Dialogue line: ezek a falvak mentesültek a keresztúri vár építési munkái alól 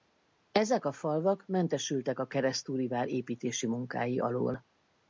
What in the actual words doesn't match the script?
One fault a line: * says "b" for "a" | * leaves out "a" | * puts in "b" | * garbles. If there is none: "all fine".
all fine